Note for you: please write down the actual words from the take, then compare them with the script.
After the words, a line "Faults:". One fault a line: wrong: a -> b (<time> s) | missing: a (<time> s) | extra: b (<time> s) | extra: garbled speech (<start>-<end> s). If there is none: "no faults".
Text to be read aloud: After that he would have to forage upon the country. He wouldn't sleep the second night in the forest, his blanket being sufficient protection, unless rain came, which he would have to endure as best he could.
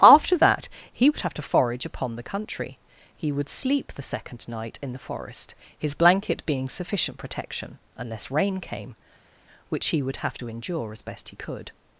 After that he would have to forage upon the country. He would sleep the second night in the forest, his blanket being sufficient protection, unless rain came, which he would have to endure as best he could.
Faults:
wrong: wouldn't -> would (3.3 s)